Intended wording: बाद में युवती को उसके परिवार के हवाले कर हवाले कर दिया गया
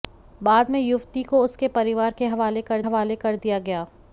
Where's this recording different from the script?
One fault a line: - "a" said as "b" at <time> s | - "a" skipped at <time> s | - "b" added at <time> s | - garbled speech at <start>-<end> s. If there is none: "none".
none